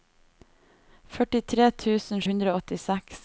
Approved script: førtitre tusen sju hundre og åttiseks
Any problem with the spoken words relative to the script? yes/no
yes